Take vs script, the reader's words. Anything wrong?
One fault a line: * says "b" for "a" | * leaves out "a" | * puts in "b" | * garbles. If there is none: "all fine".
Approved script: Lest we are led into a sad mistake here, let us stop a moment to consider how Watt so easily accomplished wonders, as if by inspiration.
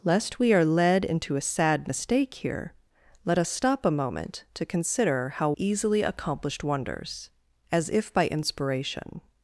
* leaves out "Watt so"